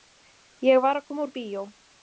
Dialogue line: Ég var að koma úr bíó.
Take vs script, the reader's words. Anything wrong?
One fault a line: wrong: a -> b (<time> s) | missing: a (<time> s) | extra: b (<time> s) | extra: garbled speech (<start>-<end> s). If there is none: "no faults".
no faults